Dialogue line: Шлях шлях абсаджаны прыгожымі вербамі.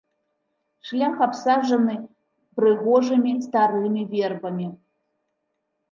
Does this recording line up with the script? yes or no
no